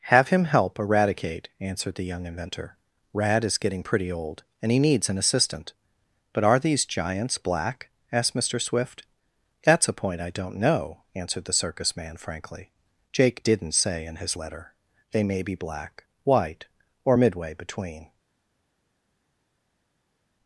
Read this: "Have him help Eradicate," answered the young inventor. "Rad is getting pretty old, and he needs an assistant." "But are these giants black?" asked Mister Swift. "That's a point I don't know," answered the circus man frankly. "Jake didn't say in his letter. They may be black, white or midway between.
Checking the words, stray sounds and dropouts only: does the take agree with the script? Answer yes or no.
yes